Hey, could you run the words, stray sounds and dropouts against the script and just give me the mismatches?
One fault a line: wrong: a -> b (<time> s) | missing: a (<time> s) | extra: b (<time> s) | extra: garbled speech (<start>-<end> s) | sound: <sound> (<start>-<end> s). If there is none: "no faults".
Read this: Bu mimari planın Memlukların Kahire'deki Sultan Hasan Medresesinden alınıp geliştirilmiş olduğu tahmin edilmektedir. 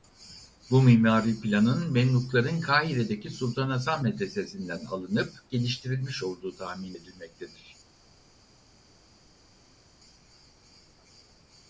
no faults